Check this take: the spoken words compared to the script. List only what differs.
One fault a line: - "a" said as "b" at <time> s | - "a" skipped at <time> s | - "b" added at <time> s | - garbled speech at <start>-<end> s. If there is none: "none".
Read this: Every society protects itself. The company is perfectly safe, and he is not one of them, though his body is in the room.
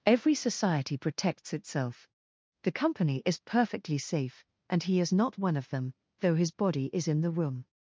none